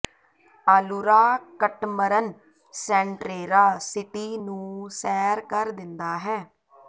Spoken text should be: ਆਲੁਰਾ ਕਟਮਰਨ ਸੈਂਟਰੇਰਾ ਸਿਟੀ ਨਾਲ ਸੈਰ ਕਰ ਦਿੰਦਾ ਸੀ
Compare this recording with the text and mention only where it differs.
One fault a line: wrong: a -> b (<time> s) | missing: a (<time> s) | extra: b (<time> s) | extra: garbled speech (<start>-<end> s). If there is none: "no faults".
wrong: ਨਾਲ -> ਨੂੰ (4.4 s)
wrong: ਸੀ -> ਹੈ (6.2 s)